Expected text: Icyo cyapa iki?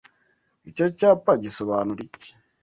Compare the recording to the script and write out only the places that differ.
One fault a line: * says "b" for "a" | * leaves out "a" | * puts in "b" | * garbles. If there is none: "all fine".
* puts in "gisobanura"